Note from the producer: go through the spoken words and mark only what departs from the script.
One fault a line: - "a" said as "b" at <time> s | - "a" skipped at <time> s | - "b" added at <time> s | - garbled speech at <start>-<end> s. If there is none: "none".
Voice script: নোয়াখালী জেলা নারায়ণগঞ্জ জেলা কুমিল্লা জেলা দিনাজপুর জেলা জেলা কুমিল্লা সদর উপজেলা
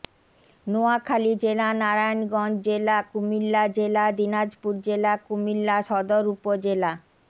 - "জেলা" skipped at 5.1 s